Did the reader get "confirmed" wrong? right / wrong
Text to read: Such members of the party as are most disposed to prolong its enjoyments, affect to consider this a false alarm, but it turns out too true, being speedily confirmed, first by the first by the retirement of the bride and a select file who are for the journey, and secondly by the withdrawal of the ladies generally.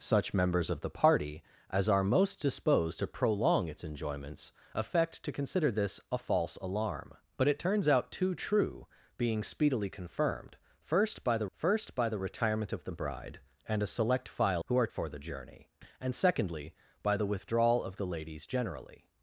right